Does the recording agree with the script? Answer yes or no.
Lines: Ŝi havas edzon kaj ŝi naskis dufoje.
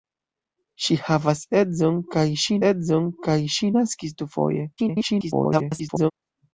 no